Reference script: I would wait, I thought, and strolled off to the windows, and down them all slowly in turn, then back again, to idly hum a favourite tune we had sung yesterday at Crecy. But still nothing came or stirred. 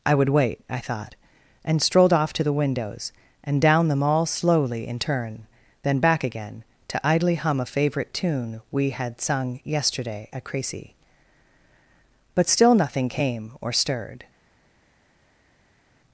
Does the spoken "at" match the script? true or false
true